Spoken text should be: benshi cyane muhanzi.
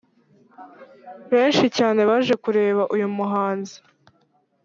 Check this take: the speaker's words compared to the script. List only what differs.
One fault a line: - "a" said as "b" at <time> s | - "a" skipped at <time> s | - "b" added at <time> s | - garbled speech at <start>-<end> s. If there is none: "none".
- "baje kureba uyu" added at 2.1 s